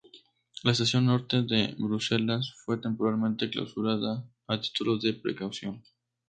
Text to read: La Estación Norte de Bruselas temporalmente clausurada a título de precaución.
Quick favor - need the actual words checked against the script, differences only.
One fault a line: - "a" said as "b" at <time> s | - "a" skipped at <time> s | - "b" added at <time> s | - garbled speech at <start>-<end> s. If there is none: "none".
- "fue" added at 2.6 s